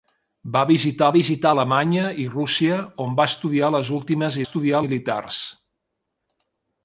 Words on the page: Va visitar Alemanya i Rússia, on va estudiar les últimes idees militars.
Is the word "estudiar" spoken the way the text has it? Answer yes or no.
yes